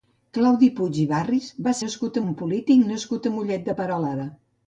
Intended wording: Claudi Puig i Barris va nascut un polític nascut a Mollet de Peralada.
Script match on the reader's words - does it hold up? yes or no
yes